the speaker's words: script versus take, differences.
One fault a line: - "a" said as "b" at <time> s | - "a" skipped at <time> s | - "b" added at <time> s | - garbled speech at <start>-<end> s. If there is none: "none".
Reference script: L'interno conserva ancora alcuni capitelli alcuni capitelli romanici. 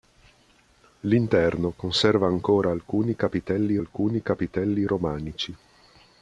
none